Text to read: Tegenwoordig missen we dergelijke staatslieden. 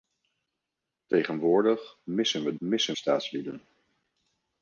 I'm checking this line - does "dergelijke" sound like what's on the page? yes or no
no